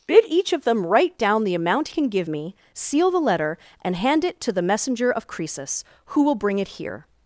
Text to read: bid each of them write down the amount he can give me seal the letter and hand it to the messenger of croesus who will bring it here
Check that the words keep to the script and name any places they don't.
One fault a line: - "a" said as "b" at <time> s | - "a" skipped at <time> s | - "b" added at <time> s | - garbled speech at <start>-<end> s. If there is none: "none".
- "he" skipped at 1.9 s